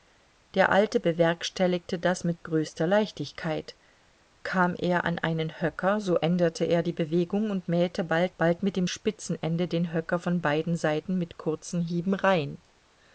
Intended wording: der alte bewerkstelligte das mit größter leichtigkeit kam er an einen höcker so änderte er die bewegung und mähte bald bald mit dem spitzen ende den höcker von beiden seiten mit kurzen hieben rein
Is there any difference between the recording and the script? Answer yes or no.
no